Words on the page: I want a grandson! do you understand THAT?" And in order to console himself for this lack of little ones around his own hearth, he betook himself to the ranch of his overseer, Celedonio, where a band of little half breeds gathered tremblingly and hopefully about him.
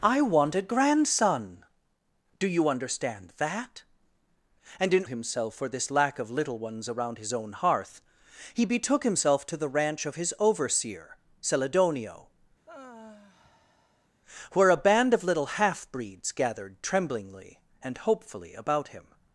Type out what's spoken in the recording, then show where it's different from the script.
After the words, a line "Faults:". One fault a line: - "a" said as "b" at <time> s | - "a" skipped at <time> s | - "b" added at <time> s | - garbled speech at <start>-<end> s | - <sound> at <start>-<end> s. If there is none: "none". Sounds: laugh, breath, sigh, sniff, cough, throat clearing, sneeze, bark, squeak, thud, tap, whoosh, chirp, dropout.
I want a grandson! do you understand THAT?" And in himself for this lack of little ones around his own hearth, he betook himself to the ranch of his overseer, Celedonio, where a band of little half breeds gathered tremblingly and hopefully about him.
Faults:
- "order to console" skipped at 5.0 s
- sigh at 12.7-14.1 s